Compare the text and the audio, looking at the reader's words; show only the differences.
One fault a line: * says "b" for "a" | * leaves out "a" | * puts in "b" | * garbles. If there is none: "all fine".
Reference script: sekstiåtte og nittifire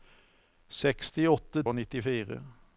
all fine